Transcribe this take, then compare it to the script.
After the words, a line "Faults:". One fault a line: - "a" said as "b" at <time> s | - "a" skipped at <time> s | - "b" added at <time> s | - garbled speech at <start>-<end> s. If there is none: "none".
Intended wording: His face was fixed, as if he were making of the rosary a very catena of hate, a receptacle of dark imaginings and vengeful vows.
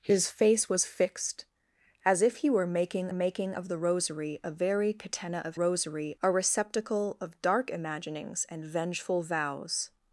His face was fixed, as if he were making making of the rosary a very catena of rosary, a receptacle of dark imaginings and vengeful vows.
Faults:
- "making" added at 3.1 s
- "hate" said as "rosary" at 5.5 s